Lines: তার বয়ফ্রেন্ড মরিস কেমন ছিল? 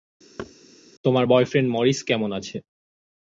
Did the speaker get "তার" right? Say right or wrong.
wrong